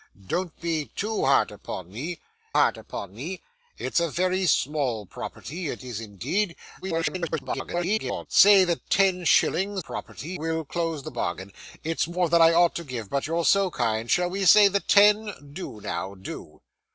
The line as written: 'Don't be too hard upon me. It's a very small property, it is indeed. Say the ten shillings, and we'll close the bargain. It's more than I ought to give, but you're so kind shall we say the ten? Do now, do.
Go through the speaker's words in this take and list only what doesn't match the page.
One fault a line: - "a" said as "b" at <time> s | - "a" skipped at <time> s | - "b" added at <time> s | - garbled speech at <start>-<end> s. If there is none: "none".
- "hard upon me" added at 2.5 s
- garbled speech at 6.8-8.3 s
- "and" said as "property" at 9.8 s